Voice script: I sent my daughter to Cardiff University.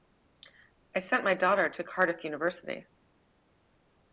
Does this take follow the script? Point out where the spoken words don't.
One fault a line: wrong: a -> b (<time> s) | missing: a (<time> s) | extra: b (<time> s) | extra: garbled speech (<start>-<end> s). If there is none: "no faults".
no faults